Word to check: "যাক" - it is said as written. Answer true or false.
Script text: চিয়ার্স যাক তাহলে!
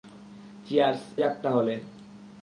true